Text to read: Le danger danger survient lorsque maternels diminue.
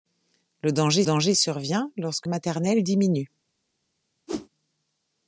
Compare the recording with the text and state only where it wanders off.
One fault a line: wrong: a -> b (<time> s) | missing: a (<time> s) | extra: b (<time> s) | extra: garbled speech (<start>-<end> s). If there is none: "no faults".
no faults